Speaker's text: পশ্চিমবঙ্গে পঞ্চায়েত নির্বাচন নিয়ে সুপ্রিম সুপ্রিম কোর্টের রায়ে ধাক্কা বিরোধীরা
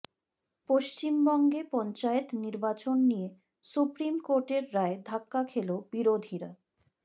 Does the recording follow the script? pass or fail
fail